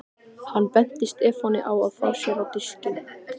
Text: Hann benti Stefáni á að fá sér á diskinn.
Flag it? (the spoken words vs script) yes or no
no